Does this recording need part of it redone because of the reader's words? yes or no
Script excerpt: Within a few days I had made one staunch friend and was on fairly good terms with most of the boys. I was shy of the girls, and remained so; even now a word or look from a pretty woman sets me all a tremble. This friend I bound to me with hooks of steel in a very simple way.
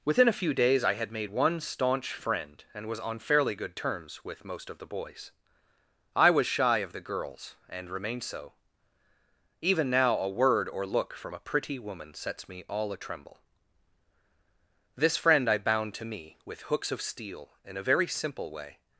no